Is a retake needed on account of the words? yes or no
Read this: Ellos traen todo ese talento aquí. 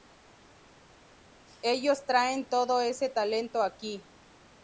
no